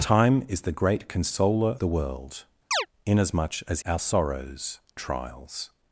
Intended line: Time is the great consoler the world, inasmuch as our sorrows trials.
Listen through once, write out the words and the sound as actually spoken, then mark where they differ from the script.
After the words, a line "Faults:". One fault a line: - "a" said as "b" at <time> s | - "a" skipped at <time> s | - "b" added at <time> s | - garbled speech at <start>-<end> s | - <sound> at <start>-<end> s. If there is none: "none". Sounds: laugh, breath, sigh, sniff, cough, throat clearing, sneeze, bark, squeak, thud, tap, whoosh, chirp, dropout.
Time is the great consoler the world, inasmuch as our sorrows trials.
Faults:
- chirp at 2.7-2.9 s